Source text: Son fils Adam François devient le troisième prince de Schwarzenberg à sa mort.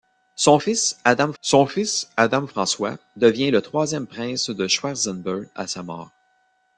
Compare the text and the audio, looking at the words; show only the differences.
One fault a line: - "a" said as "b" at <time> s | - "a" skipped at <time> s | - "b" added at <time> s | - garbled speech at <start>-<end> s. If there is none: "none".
- "son fils Adam" added at 1.4 s